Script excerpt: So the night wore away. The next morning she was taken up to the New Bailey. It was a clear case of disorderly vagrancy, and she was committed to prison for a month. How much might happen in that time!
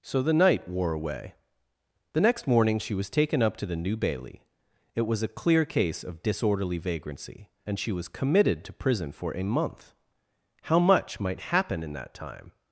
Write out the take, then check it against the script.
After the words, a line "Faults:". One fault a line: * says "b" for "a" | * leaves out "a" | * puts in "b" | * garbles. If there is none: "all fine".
So the night wore away. The next morning she was taken up to the New Bailey. It was a clear case of disorderly vagrancy, and she was committed to prison for a month. How much might happen in that time!
Faults:
all fine